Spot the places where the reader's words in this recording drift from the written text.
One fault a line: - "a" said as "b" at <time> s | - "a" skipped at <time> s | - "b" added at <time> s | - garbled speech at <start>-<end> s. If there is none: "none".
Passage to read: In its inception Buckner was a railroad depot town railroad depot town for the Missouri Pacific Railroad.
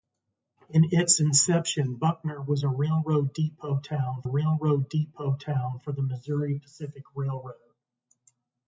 none